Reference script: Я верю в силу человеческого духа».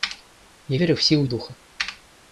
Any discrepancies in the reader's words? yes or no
yes